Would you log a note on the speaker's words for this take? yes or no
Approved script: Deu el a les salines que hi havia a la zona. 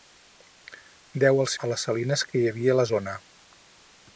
no